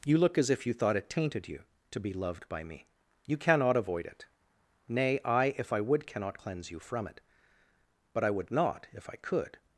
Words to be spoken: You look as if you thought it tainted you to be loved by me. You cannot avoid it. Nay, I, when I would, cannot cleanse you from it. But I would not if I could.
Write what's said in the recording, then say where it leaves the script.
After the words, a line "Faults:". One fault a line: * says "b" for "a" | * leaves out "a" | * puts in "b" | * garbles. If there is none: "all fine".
You look as if you thought it tainted you to be loved by me. You cannot avoid it. Nay, I, if I would, cannot cleanse you from it. But I would not if I could.
Faults:
* says "if" for "when"